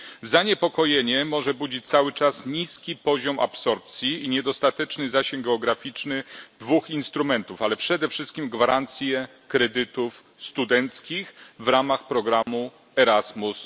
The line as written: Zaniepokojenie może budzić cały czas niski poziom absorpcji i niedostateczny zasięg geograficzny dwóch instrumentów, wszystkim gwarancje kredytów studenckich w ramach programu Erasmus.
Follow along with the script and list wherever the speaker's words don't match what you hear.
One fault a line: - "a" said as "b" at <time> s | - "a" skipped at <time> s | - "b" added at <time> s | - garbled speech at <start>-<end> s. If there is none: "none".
- "ale przede" added at 7.6 s